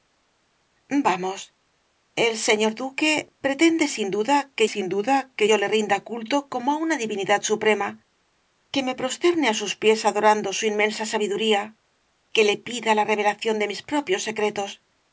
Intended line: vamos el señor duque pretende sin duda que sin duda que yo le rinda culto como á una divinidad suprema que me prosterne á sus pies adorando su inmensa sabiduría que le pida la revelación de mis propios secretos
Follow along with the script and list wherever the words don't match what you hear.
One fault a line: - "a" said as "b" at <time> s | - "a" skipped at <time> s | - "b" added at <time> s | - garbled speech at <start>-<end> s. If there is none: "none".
none